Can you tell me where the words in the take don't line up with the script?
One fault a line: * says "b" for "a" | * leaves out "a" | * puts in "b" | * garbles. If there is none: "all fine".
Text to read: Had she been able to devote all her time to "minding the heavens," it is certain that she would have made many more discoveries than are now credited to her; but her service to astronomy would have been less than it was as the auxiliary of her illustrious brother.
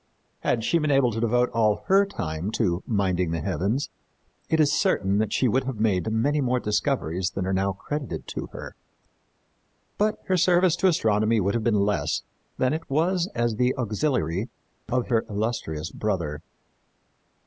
all fine